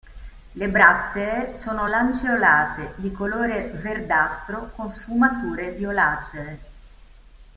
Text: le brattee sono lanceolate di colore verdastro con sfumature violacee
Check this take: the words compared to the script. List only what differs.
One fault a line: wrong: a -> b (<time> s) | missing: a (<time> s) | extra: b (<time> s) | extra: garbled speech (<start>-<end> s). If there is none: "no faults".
no faults